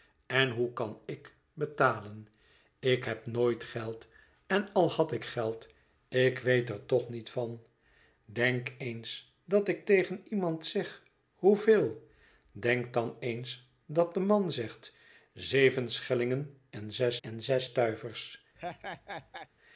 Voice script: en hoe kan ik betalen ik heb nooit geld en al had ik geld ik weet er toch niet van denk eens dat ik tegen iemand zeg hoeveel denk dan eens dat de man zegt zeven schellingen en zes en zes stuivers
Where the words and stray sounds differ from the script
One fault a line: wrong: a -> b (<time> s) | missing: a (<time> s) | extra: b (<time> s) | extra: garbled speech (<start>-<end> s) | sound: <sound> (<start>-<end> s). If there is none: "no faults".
sound: laugh (18.6-19.5 s)